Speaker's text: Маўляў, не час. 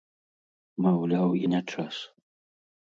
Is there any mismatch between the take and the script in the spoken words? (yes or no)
no